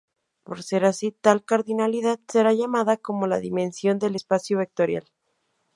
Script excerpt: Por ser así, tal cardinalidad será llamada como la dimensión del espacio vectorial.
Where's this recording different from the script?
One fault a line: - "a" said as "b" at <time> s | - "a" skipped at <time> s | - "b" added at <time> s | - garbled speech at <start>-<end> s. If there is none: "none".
none